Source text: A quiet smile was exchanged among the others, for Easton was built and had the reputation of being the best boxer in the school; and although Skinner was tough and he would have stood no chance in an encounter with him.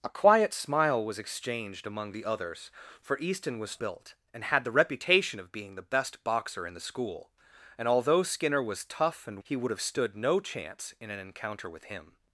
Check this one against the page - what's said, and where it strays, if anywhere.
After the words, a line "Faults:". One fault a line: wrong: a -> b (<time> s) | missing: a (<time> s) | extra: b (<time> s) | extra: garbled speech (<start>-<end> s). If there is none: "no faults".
A quiet smile was exchanged among the others, for Easton was built and had the reputation of being the best boxer in the school; and although Skinner was tough and he would have stood no chance in an encounter with him.
Faults:
no faults